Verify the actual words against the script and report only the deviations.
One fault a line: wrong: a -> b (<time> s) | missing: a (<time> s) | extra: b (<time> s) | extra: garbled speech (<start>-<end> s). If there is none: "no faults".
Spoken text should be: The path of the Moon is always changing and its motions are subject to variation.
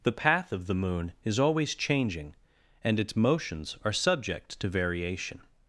no faults